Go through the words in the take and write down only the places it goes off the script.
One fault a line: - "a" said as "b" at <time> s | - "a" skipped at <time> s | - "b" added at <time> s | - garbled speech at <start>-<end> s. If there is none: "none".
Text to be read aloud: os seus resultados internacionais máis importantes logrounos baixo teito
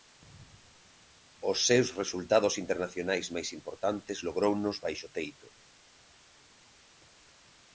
none